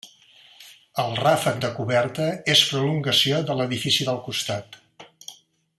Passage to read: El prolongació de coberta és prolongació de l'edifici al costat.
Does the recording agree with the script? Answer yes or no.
no